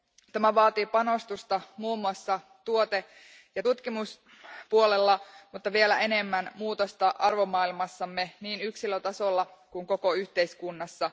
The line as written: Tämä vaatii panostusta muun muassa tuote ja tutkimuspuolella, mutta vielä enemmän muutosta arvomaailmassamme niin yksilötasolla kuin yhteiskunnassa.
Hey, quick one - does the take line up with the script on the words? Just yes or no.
no